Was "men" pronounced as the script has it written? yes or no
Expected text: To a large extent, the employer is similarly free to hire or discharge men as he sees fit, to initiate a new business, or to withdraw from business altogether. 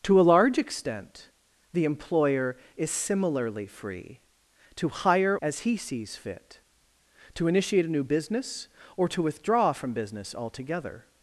no